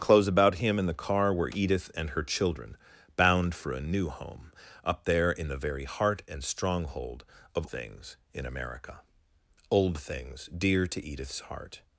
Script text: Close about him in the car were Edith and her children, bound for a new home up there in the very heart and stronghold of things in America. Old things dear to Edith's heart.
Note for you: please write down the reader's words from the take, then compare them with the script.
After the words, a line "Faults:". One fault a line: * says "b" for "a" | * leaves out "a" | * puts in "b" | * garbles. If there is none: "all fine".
Close about him in the car were Edith and her children, bound for a new home up there in the very heart and stronghold of things in America. Old things dear to Edith's heart.
Faults:
all fine